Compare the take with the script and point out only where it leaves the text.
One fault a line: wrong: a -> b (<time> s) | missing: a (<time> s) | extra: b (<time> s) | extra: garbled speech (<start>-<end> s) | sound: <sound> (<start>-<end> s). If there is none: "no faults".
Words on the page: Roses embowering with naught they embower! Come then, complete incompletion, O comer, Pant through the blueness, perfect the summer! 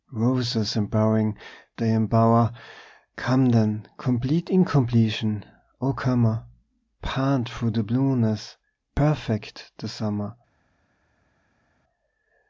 missing: with naught (1.4 s)